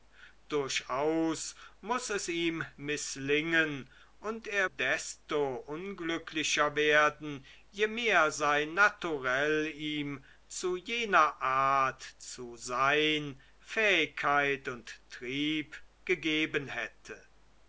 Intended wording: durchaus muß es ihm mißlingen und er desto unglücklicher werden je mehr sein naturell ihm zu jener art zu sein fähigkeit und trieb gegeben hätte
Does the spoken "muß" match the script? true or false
true